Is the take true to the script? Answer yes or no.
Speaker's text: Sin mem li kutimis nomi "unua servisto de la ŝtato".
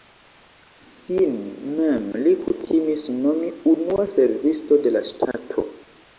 yes